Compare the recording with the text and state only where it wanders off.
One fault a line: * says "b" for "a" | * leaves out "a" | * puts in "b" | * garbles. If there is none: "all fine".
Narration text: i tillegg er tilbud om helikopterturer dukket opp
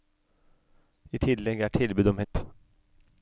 * leaves out "helikopterturer dukket"